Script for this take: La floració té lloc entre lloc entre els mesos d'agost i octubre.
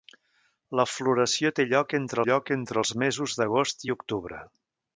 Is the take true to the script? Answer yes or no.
yes